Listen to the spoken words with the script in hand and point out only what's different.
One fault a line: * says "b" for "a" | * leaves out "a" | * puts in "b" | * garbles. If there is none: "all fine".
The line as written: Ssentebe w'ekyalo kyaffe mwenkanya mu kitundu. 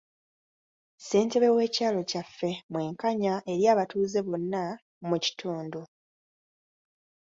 * puts in "eri abatuuze bonna"